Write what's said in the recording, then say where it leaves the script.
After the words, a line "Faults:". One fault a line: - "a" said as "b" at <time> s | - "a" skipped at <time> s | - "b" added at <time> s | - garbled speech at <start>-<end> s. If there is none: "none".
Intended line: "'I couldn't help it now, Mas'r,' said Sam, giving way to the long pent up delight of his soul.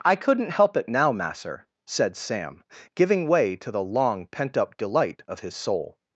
"'I couldn't help it now, Mas'r,' said Sam, giving way to the long pent up delight of his soul.
Faults:
none